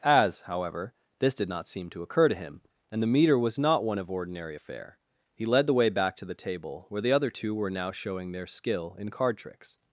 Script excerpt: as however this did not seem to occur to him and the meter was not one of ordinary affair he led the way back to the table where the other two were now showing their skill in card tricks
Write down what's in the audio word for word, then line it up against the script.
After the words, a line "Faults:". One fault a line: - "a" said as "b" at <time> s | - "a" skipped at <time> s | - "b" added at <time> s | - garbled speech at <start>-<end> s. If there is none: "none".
as however this did not seem to occur to him and the meter was not one of ordinary affair he led the way back to the table where the other two were now showing their skill in card tricks
Faults:
none